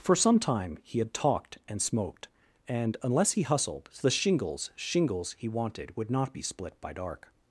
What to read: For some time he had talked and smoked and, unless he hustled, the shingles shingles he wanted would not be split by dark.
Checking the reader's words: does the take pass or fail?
pass